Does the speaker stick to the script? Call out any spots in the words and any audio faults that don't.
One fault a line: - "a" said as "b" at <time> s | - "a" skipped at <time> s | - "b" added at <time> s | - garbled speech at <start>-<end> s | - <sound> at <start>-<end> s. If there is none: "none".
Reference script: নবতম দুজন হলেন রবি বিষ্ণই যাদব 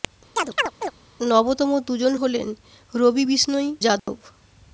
- chirp at 0.4-0.9 s
- dropout at 4.0-4.1 s